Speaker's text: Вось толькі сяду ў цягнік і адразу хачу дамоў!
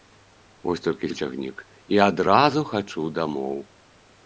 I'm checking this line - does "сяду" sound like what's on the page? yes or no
no